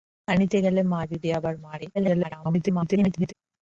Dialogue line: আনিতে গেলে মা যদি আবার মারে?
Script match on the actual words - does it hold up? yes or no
no